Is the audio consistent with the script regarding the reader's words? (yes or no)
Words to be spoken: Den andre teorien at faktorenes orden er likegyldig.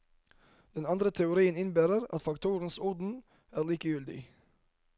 no